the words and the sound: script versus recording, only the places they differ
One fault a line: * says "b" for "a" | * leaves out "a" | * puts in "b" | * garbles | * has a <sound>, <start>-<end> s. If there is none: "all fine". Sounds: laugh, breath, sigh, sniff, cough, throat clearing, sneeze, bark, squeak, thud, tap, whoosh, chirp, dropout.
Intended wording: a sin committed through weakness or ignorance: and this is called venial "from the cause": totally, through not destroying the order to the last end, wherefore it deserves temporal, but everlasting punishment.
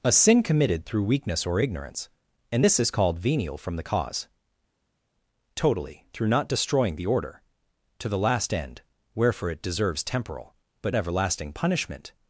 all fine